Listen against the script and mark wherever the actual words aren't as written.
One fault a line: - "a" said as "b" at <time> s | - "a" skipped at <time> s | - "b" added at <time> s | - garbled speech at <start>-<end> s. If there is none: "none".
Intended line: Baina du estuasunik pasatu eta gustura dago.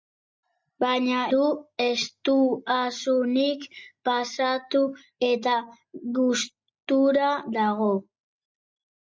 none